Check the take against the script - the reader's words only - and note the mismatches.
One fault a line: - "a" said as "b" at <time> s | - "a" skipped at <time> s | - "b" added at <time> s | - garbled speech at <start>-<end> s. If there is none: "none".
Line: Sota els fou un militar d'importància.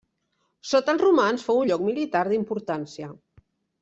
- "romans" added at 1.0 s
- "lloc" added at 1.7 s